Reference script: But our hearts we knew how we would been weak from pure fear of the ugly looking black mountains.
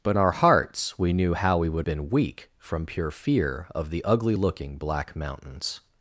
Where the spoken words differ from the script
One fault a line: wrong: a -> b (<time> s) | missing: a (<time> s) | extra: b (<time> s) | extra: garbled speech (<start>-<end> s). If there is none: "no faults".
no faults